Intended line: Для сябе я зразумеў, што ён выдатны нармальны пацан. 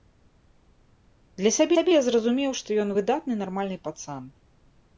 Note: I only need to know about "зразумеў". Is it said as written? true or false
true